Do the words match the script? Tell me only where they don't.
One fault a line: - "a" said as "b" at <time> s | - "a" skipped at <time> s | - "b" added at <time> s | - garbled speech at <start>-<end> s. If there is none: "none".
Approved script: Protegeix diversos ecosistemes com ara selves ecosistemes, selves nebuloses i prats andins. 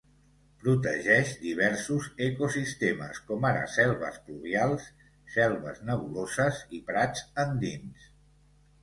- "ecosistemes" said as "pluvials" at 4.3 s